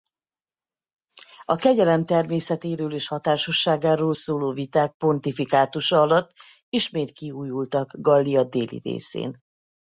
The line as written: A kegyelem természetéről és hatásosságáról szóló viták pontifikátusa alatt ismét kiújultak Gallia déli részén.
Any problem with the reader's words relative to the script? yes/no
no